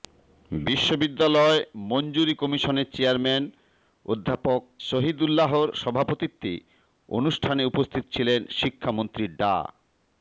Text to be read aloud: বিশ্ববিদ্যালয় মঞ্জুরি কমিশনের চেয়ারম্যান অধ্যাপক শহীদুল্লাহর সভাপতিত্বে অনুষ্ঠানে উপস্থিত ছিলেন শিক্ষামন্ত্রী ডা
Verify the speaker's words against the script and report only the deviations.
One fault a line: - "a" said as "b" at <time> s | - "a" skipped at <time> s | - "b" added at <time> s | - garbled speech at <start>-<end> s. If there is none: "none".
none